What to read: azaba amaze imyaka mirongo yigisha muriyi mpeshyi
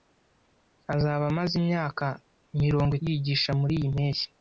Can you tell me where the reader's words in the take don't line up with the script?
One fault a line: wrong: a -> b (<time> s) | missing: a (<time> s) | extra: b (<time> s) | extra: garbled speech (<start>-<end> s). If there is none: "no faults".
no faults